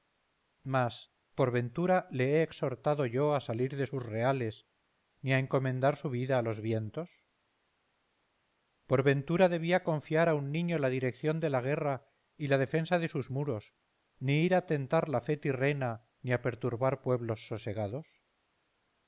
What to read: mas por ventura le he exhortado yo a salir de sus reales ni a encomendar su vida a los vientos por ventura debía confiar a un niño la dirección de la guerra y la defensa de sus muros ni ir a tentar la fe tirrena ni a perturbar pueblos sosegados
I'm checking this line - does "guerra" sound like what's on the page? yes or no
yes